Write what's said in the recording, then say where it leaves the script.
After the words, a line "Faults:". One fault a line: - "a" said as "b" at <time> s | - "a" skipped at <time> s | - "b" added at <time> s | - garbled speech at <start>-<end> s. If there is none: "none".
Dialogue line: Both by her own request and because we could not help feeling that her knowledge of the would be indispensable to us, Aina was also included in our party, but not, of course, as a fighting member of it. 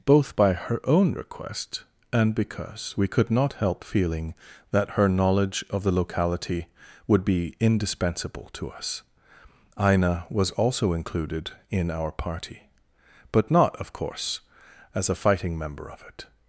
Both by her own request and because we could not help feeling that her knowledge of the locality would be indispensable to us, Aina was also included in our party, but not, of course, as a fighting member of it.
Faults:
- "locality" added at 5.9 s